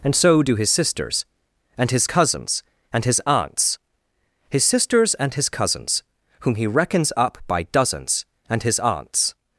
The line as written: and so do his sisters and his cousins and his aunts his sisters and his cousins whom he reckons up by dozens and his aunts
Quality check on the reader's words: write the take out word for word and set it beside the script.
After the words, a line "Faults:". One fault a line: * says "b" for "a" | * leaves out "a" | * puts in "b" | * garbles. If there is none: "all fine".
and so do his sisters and his cousins and his aunts his sisters and his cousins whom he reckons up by dozens and his aunts
Faults:
all fine